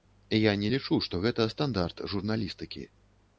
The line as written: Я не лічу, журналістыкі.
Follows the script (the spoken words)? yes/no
no